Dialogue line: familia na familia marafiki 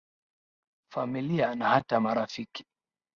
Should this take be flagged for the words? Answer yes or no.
yes